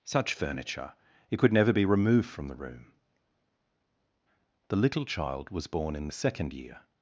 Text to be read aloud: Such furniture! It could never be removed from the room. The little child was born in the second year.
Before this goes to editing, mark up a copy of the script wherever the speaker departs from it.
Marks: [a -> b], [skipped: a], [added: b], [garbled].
Such furniture! It could never be removed from the room. The little child was born in the second year.